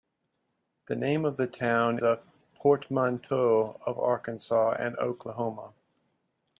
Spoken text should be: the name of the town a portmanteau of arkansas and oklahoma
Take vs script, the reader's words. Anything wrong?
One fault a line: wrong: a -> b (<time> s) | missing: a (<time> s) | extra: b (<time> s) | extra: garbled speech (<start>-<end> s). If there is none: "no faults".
no faults